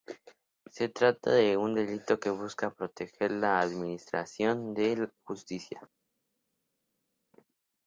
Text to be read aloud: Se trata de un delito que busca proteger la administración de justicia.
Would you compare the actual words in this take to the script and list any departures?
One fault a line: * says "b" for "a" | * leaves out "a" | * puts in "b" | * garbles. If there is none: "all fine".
all fine